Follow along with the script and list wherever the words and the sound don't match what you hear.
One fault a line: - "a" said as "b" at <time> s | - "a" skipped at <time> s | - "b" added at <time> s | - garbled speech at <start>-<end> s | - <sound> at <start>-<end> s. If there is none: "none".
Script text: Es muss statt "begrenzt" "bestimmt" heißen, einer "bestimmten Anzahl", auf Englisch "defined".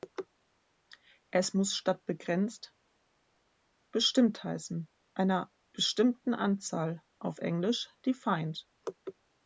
none